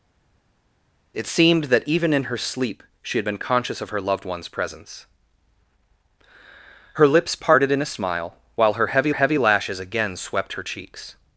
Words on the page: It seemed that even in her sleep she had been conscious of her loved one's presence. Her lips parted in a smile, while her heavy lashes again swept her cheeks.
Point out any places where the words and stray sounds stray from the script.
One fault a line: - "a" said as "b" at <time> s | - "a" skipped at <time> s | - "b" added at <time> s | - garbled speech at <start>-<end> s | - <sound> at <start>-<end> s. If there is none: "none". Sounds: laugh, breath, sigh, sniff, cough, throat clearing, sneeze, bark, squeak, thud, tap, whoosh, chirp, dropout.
- "heavy" added at 9.1 s